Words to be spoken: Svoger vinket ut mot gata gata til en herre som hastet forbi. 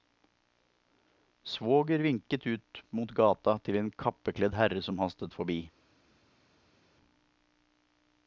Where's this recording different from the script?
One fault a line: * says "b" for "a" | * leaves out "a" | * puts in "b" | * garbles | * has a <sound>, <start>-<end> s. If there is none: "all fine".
* leaves out "gata"
* puts in "kappekledd"